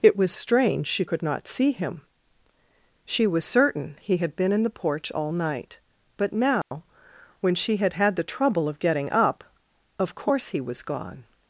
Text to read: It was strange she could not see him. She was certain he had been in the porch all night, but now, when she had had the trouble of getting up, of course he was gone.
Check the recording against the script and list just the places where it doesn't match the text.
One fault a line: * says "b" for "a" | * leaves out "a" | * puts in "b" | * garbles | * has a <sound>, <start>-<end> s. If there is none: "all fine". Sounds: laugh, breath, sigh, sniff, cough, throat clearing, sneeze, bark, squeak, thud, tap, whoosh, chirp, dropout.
* has a dropout, 6.6-6.7 s